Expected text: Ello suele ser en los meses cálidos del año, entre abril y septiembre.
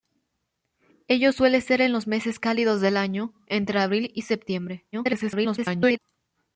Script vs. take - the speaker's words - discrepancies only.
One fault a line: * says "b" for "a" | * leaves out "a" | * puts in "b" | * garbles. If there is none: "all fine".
* garbles